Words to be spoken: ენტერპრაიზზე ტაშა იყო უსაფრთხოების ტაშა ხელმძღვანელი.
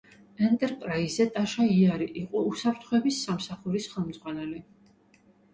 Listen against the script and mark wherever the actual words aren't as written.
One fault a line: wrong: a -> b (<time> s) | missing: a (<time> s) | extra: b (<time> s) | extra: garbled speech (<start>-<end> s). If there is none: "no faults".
extra: იარი (1.8 s)
wrong: ტაშა -> სამსახურის (3.3 s)